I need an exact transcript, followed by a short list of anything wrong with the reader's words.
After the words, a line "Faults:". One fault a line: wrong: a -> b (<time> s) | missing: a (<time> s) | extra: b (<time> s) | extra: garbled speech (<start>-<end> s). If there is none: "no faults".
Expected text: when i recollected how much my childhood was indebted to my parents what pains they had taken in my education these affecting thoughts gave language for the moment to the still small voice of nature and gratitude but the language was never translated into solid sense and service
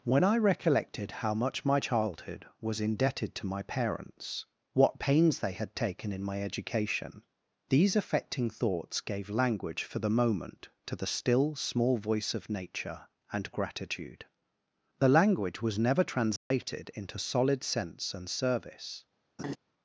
when i recollected how much my childhood was indebted to my parents what pains they had taken in my education these affecting thoughts gave language for the moment to the still small voice of nature and gratitude the language was never translated into solid sense and service
Faults:
missing: but (14.2 s)